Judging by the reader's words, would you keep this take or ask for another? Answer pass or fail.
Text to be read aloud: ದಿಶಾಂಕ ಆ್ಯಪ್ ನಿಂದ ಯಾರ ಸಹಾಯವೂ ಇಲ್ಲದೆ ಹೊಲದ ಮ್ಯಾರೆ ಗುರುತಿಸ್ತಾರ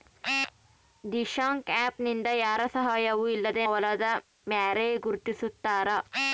pass